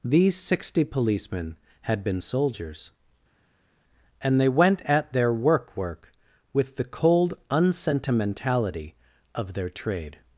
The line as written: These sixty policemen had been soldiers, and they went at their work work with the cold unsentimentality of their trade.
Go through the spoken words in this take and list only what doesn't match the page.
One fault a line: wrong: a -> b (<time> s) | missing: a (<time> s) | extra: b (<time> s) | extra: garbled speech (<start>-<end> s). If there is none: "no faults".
no faults